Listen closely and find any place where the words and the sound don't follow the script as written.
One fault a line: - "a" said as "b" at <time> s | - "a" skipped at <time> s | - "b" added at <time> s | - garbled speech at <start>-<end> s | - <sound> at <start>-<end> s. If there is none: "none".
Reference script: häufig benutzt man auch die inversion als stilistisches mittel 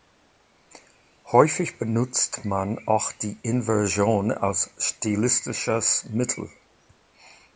none